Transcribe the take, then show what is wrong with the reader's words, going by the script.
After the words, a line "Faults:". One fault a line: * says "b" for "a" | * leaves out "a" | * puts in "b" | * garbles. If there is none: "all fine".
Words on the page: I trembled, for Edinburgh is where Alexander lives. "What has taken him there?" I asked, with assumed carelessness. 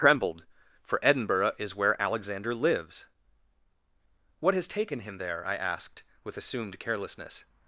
trembled, for Edinburgh is where Alexander lives. "What has taken him there?" I asked, with assumed carelessness.
Faults:
* leaves out "I"